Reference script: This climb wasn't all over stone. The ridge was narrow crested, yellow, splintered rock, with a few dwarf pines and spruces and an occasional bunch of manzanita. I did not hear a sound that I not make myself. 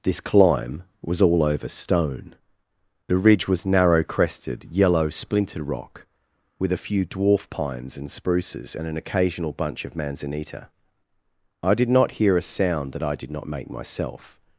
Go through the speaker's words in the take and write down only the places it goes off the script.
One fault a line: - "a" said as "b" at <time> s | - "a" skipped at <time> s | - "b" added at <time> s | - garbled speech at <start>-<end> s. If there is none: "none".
- "wasn't" said as "was" at 1.0 s
- "did" added at 13.1 s